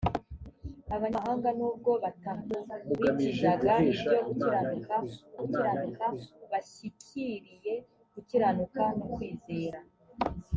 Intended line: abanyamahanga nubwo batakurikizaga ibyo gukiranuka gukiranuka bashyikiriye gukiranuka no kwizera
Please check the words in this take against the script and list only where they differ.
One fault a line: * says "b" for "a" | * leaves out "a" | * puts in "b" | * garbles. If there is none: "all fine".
all fine